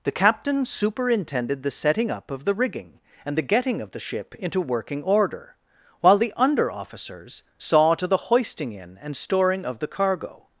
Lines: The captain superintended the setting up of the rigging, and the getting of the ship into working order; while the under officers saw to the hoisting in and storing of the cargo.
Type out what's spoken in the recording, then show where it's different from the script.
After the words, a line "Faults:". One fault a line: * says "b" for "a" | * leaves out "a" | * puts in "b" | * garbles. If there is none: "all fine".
The captain superintended the setting up of the rigging, and the getting of the ship into working order; while the under officers saw to the hoisting in and storing of the cargo.
Faults:
all fine